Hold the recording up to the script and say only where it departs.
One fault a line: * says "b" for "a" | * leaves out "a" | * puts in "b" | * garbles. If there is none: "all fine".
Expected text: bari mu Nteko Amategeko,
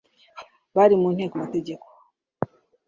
all fine